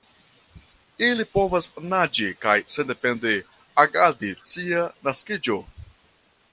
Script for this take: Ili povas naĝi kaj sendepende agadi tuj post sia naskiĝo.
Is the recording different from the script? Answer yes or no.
yes